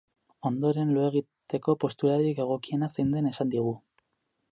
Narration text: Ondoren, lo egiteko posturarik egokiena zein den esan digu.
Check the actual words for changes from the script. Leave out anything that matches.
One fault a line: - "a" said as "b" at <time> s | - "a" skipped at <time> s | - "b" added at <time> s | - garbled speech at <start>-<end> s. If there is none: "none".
none